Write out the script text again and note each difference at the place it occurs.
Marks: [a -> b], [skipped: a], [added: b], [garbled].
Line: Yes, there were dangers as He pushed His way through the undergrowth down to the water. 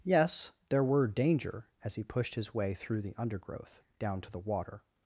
Yes, there were [dangers -> danger] as He pushed His way through the undergrowth down to the water.